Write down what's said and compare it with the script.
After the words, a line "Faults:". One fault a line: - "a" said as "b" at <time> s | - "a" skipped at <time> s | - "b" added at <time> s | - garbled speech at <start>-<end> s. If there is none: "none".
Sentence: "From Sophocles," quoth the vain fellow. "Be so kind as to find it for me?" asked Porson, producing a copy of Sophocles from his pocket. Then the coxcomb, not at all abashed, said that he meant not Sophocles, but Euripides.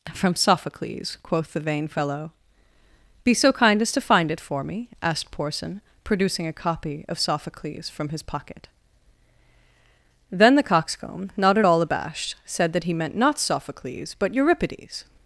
"From Sophocles," quoth the vain fellow. "Be so kind as to find it for me?" asked Porson, producing a copy of Sophocles from his pocket. Then the coxcomb, not at all abashed, said that he meant not Sophocles, but Euripides.
Faults:
none